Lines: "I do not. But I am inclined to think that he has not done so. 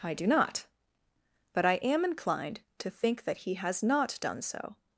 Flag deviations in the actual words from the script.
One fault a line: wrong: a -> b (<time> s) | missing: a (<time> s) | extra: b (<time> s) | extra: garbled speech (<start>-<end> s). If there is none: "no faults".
no faults